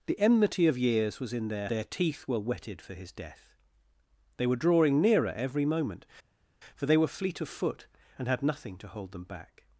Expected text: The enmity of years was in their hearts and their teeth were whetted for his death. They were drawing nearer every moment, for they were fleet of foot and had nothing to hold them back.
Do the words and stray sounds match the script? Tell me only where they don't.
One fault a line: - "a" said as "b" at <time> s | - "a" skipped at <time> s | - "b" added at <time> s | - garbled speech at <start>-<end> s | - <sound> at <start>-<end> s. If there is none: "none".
- "hearts and" skipped at 1.7 s